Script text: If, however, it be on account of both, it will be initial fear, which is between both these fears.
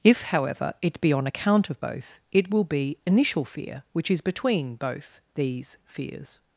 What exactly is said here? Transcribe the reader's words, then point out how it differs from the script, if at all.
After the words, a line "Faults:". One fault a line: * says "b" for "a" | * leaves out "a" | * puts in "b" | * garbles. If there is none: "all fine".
If, however, it be on account of both, it will be initial fear, which is between both these fears.
Faults:
all fine